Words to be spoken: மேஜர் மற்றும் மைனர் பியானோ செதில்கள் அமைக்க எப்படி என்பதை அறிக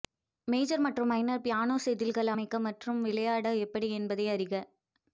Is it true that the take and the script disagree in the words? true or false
true